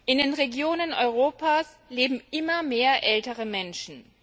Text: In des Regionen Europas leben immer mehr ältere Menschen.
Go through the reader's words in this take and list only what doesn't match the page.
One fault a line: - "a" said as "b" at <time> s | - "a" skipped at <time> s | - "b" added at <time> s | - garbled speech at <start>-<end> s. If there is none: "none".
- "des" said as "den" at 0.2 s